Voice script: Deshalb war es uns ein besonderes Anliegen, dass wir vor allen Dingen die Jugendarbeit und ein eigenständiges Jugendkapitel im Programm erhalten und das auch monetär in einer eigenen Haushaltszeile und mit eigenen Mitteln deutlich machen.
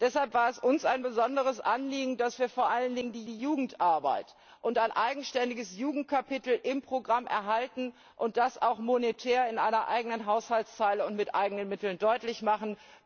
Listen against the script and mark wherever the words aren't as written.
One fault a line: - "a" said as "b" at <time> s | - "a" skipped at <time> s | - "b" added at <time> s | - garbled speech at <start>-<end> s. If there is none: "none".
- "die" added at 3.2 s